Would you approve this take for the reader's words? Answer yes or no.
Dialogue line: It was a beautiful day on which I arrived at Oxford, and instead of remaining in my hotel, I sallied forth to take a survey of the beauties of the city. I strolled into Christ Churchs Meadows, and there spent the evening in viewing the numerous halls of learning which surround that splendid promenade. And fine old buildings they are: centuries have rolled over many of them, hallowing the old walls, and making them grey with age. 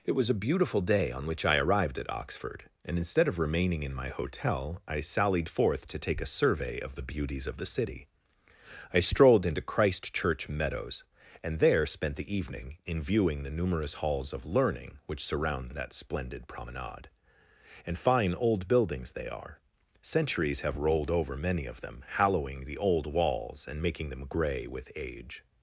no